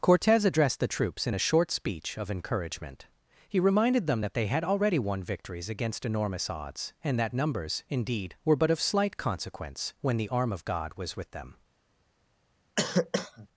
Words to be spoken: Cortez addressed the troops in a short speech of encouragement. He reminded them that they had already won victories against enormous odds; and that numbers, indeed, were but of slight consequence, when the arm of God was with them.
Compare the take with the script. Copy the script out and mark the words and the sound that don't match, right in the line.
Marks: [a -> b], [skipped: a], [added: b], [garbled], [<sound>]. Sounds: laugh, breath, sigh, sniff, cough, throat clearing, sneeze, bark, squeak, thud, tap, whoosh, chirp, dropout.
Cortez addressed the troops in a short speech of encouragement. He reminded them that they had already won victories against enormous odds; and that numbers, indeed, were but of slight consequence, when the arm of God was with them. [cough]